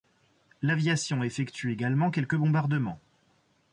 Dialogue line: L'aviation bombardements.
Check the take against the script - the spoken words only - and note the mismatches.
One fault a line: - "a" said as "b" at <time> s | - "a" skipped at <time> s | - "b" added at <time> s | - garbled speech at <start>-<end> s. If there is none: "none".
- "effectue également quelques" added at 1.2 s